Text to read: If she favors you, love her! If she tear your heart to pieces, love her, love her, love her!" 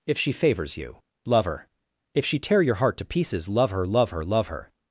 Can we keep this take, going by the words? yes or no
yes